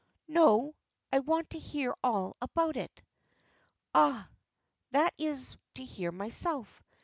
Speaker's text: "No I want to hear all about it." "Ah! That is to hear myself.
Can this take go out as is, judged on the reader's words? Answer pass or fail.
pass